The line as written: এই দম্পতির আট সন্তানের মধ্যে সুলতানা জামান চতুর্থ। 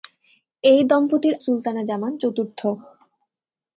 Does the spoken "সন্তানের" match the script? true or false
false